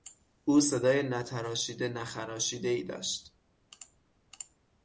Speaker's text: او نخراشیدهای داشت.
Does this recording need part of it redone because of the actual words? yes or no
yes